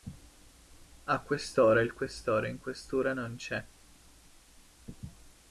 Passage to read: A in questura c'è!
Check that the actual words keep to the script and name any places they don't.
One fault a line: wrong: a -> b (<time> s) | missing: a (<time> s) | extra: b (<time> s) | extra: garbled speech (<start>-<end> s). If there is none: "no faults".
extra: quest'ora il questore (1.2 s)
extra: non (3.1 s)